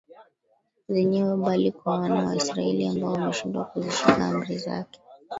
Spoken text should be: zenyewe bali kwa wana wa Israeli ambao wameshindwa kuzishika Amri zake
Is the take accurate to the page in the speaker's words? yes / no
yes